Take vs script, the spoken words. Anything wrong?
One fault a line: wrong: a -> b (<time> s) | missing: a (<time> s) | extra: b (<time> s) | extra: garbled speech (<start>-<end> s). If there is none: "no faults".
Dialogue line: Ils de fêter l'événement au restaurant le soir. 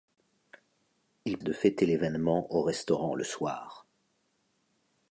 no faults